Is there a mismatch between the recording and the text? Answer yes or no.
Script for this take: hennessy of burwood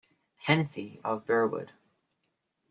no